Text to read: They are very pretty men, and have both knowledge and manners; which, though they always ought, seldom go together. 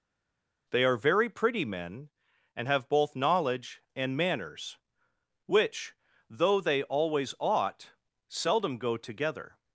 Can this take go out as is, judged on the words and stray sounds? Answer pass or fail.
pass